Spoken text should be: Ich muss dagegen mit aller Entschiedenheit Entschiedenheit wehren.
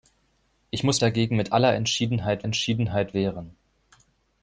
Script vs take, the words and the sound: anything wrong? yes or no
no